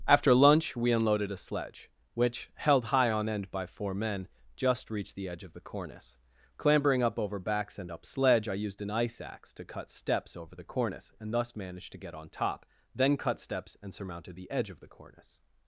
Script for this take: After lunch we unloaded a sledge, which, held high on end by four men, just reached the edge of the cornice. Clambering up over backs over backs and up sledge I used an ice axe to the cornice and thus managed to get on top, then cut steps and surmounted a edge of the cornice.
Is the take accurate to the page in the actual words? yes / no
no